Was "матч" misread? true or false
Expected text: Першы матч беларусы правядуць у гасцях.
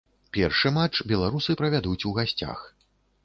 false